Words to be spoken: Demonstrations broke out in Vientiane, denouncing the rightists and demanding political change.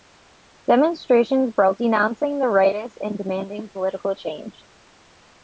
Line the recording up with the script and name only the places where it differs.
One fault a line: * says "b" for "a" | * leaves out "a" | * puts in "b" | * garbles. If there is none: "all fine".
* leaves out "out in Vientiane"